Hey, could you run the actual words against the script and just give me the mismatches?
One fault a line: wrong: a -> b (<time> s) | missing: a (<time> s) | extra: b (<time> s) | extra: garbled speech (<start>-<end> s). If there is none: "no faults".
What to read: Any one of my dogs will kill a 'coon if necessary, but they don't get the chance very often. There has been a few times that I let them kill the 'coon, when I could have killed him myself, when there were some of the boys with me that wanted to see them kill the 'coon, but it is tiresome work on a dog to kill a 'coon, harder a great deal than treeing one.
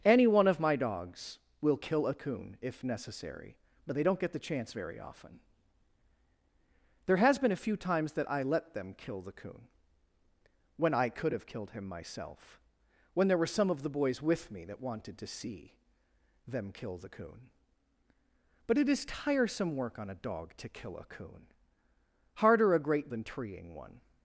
missing: deal (23.1 s)